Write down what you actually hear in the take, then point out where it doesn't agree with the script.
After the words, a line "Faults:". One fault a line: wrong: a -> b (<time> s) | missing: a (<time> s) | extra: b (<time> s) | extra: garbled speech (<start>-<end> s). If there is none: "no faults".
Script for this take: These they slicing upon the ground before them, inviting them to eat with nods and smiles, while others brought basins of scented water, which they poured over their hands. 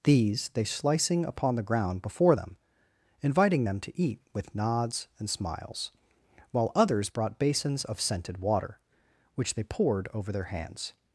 These they slicing upon the ground before them, inviting them to eat with nods and smiles, while others brought basins of scented water, which they poured over their hands.
Faults:
no faults